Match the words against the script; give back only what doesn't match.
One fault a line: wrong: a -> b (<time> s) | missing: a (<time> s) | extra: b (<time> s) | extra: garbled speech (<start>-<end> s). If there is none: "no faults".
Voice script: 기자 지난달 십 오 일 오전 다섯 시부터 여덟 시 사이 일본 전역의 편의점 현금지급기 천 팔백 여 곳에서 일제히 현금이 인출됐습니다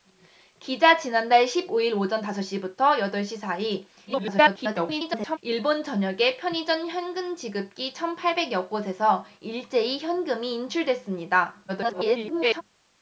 extra: garbled speech (4.1-5.4 s)
extra: garbled speech (11.7-12.6 s)